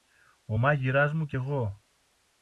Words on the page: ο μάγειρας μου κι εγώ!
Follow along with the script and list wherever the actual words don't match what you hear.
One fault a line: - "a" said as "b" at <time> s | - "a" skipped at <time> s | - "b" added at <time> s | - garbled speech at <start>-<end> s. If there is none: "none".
none